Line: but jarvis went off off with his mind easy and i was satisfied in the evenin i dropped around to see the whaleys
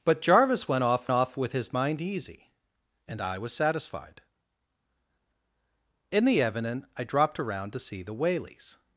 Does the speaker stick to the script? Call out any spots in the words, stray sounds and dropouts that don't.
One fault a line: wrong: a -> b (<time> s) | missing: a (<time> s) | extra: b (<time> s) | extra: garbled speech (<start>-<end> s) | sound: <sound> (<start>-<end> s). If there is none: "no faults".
no faults